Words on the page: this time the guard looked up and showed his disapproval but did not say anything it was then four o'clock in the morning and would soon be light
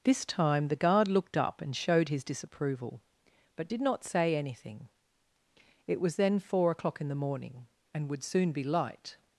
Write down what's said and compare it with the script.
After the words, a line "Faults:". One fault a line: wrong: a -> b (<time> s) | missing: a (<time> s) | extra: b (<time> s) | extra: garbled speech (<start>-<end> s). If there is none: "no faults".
this time the guard looked up and showed his disapproval but did not say anything it was then four o'clock in the morning and would soon be light
Faults:
no faults